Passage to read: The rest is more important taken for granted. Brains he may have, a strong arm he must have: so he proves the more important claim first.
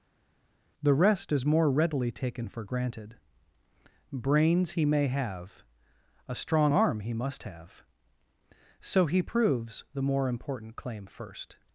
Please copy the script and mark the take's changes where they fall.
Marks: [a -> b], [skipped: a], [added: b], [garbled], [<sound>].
The rest is more [important -> readily] taken for granted. Brains he may have, a strong arm he must have: so he proves the more important claim first.